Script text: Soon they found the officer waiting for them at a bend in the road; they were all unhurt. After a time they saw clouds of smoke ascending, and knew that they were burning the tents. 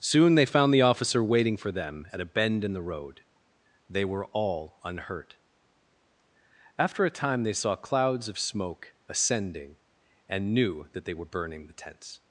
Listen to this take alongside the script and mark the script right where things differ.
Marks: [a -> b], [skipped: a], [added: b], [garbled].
Soon they found the officer waiting for them at a bend in the road; they were all unhurt. After a time they saw clouds of smoke ascending, and knew that they were burning the tents.